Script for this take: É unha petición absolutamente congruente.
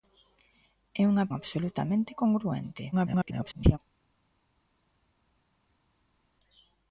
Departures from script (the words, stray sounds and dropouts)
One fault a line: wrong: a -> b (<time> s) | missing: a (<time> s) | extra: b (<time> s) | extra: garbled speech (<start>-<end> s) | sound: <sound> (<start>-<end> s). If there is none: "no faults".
missing: petición (1.3 s)
extra: garbled speech (2.9-3.8 s)